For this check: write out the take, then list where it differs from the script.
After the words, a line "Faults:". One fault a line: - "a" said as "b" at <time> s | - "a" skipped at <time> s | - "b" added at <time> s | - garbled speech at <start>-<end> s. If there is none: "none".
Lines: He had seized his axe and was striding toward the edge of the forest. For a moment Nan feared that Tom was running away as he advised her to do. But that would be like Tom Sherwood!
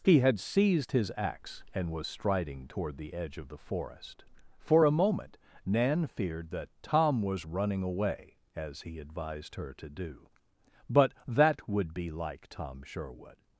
He had seized his axe and was striding toward the edge of the forest. For a moment Nan feared that Tom was running away as he advised her to do. But that would be like Tom Sherwood!
Faults:
none